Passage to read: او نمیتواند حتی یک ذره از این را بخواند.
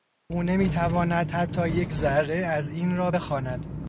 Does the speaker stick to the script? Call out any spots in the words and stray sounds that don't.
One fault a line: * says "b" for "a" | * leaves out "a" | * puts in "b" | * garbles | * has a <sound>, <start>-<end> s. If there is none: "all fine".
all fine